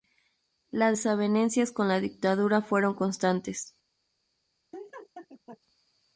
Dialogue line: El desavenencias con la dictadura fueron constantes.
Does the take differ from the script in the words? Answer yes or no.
yes